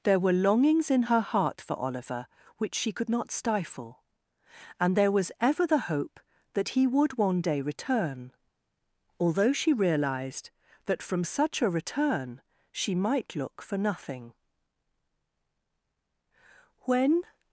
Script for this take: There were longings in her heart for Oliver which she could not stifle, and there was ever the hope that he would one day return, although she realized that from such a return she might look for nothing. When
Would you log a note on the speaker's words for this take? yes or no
no